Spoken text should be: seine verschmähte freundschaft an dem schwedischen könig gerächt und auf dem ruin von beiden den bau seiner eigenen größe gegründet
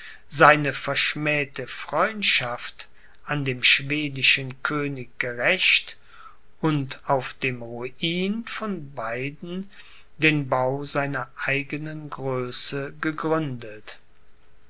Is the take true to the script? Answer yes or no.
yes